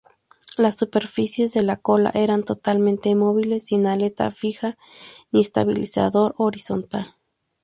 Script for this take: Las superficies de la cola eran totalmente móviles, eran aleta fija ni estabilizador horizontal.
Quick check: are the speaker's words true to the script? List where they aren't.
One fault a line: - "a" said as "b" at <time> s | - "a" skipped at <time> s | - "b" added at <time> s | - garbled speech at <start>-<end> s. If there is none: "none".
- "eran" said as "sin" at 3.6 s